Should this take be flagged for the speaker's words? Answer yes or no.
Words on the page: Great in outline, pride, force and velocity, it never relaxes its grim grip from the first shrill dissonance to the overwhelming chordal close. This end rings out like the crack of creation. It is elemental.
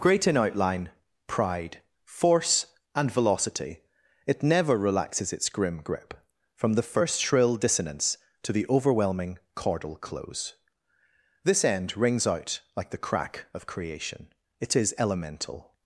no